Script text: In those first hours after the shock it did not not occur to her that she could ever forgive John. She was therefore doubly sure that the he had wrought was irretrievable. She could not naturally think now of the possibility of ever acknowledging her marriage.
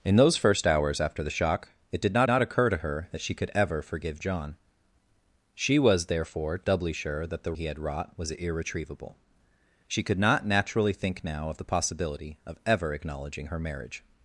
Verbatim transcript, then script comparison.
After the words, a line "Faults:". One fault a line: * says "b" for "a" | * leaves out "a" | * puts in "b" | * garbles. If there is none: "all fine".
In those first hours after the shock it did not not occur to her that she could ever forgive John. She was therefore doubly sure that the he had wrought was irretrievable. She could not naturally think now of the possibility of ever acknowledging her marriage.
Faults:
all fine